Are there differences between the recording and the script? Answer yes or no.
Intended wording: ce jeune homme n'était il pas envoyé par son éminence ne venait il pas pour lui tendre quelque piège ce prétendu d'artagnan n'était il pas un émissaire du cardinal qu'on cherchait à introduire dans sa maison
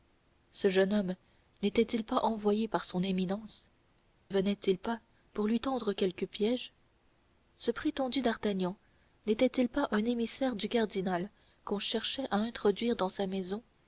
yes